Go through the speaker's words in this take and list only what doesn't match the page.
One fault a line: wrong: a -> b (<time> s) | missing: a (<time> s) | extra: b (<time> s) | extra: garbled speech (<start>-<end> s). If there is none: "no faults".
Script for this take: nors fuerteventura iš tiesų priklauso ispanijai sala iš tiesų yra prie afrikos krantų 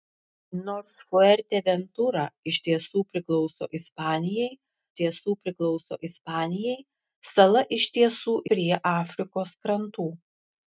extra: tiesų priklauso ispanijai (5.0 s)
missing: yra (8.4 s)